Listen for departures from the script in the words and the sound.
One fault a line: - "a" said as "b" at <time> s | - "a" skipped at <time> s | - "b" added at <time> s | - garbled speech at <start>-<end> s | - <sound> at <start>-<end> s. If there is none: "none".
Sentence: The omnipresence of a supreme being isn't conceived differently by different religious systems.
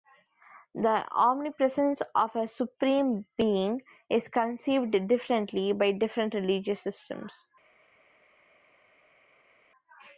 - "isn't" said as "is" at 4.1 s